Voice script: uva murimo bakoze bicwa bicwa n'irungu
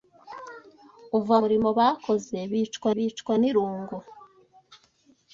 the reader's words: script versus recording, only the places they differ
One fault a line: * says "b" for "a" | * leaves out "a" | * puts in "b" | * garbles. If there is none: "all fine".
all fine